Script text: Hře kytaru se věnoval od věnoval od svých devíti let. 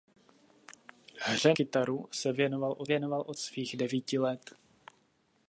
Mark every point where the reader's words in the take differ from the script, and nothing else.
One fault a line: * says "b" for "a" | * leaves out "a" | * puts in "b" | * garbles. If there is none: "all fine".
all fine